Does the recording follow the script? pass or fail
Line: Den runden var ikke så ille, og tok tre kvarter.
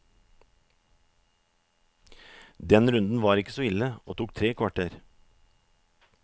pass